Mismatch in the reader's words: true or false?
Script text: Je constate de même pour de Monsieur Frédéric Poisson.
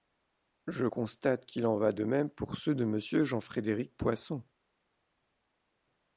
true